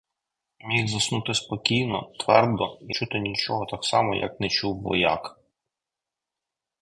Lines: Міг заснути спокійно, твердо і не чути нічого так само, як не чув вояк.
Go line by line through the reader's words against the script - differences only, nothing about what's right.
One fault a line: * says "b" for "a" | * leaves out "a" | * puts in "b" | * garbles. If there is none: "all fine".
* leaves out "не"